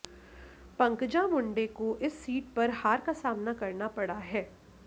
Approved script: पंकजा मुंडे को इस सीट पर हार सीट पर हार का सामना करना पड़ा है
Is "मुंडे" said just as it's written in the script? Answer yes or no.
yes